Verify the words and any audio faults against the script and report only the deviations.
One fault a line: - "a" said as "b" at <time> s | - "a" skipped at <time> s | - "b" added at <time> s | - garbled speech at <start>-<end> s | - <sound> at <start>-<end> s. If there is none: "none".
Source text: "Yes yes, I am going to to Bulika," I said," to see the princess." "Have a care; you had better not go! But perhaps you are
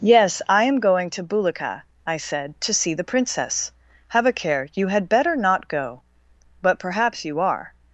- "yes" skipped at 0.4 s
- "to" skipped at 1.2 s